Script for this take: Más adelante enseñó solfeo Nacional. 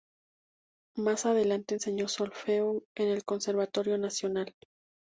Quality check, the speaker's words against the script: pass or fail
fail